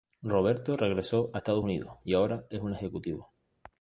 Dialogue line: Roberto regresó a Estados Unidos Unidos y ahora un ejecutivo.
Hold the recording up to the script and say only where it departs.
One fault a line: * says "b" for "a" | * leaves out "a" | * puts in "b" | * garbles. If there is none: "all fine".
* leaves out "Unidos"
* puts in "es"